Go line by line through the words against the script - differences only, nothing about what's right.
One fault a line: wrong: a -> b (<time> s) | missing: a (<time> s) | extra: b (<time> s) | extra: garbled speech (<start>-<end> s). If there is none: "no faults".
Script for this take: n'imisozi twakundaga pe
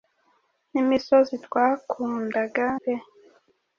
no faults